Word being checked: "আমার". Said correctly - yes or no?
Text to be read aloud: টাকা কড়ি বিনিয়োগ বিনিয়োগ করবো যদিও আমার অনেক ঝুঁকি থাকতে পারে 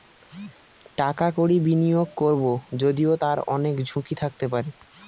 no